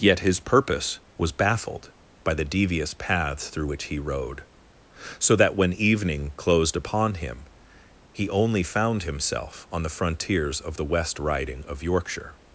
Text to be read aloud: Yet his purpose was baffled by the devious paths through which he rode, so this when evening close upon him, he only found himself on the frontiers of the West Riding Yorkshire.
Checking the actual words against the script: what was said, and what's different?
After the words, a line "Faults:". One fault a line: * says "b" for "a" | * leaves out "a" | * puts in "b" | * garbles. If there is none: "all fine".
Yet his purpose was baffled by the devious paths through which he rode, so that when evening closed upon him, he only found himself on the frontiers of the West Riding of Yorkshire.
Faults:
* says "that" for "this"
* says "closed" for "close"
* puts in "of"